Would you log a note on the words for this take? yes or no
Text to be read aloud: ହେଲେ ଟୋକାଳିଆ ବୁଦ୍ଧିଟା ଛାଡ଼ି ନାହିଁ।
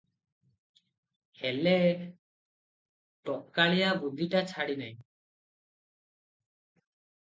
no